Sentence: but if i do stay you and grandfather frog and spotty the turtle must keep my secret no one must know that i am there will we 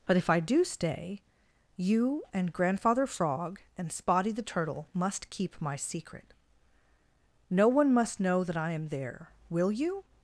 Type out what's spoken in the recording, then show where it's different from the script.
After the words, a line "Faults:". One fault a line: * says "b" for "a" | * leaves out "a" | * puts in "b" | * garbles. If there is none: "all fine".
but if i do stay you and grandfather frog and spotty the turtle must keep my secret no one must know that i am there will you
Faults:
* says "you" for "we"